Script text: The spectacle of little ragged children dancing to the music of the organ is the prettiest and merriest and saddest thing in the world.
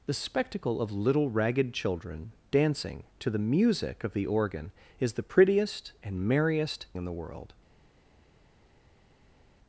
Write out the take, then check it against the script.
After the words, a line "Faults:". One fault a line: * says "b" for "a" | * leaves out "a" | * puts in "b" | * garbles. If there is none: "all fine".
The spectacle of little ragged children dancing to the music of the organ is the prettiest and merriest in the world.
Faults:
* leaves out "and saddest thing"